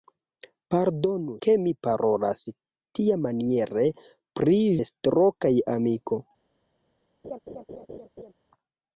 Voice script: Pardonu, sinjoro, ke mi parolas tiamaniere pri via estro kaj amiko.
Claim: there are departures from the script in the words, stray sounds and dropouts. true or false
true